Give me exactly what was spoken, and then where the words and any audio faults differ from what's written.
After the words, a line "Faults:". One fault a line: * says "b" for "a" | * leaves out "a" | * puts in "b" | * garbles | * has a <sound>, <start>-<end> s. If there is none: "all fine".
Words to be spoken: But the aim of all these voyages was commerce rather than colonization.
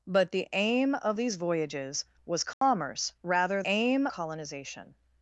But the aim of these voyages was commerce rather aim colonization.
Faults:
* leaves out "all"
* has a dropout, 2.5-2.6 s
* says "aim" for "than"